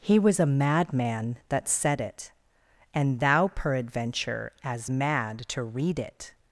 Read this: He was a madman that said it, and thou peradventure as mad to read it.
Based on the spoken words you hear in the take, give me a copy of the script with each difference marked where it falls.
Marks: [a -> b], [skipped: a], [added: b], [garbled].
He was a madman that said it, and thou peradventure as mad to read it.